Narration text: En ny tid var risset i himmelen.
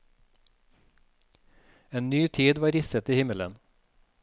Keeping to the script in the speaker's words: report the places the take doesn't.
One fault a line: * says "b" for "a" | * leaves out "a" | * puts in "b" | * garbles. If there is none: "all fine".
all fine